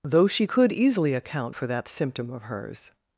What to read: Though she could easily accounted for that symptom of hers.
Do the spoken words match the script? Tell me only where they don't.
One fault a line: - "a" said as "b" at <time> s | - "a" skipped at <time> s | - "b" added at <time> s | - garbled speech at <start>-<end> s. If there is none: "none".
- "accounted" said as "account" at 1.1 s